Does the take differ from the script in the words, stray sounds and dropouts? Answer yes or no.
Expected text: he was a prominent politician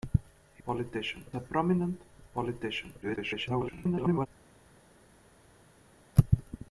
yes